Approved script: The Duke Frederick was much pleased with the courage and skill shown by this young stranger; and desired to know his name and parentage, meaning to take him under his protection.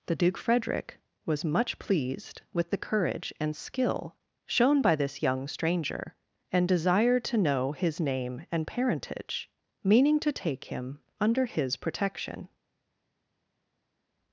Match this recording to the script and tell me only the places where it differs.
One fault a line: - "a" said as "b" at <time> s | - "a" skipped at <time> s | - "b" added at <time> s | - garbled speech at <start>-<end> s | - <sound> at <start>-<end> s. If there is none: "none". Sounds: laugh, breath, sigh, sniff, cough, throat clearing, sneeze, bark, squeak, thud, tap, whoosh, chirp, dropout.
none